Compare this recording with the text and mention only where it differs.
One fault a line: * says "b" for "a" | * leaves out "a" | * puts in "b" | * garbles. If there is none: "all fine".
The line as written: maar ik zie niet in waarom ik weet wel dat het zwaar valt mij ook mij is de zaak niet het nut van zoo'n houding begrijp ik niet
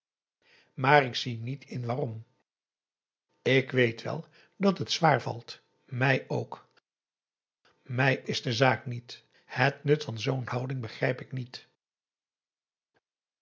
all fine